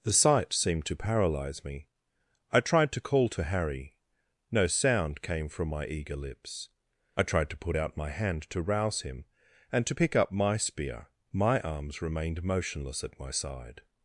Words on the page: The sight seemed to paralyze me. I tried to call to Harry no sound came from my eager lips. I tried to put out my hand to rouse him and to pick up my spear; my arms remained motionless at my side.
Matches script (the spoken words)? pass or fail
pass